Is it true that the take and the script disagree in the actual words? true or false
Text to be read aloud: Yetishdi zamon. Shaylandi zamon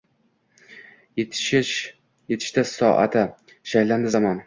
true